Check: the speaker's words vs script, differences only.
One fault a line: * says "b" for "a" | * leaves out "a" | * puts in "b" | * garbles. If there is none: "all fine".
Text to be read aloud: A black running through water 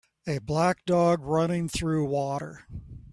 * puts in "dog"